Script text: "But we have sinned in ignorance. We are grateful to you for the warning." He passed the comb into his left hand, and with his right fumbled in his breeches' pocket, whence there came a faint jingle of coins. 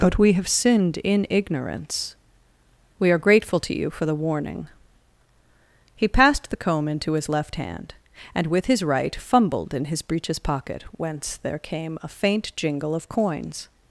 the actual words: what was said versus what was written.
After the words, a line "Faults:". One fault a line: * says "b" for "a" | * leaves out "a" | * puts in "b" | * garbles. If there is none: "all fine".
"But we have sinned in ignorance. We are grateful to you for the warning." He passed the comb into his left hand, and with his right fumbled in his breeches' pocket, whence there came a faint jingle of coins.
Faults:
all fine